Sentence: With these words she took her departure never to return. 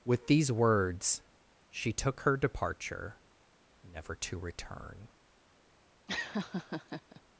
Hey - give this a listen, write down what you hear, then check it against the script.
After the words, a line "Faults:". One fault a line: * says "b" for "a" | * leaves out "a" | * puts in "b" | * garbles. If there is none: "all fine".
With these words she took her departure never to return.
Faults:
all fine